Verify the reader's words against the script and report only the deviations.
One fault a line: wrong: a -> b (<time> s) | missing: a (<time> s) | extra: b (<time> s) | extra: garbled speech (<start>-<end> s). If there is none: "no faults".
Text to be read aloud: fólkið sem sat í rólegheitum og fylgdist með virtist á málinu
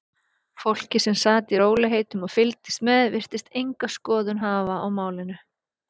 extra: enga skoðun hafa (3.6 s)